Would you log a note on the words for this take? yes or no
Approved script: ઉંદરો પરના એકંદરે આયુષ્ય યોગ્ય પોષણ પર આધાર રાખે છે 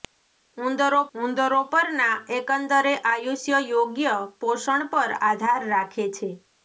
yes